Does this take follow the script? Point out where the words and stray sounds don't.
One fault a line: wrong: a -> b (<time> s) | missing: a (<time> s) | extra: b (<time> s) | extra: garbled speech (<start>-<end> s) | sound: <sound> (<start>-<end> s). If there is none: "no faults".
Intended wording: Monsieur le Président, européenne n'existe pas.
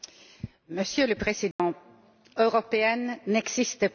sound: dropout (1.5-1.6 s)